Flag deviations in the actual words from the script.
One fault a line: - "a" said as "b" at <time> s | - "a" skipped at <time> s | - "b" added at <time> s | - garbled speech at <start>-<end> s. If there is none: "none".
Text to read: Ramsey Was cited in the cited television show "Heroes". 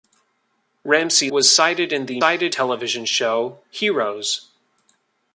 none